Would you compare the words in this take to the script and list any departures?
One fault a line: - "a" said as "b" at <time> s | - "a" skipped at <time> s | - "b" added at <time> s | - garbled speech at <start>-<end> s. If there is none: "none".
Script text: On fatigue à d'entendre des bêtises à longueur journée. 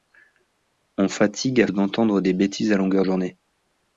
none